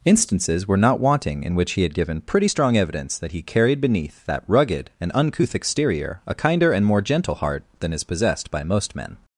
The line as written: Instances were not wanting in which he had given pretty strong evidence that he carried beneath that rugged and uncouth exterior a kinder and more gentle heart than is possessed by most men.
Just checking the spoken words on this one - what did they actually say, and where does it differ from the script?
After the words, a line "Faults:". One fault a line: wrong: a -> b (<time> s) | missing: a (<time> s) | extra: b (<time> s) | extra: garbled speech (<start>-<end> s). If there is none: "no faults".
Instances were not wanting in which he had given pretty strong evidence that he carried beneath that rugged and uncouth exterior a kinder and more gentle heart than is possessed by most men.
Faults:
no faults